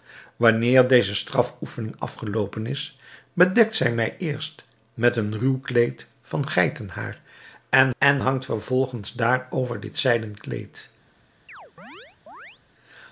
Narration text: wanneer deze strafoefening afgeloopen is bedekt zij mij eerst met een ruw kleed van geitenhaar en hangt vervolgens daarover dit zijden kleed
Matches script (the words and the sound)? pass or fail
fail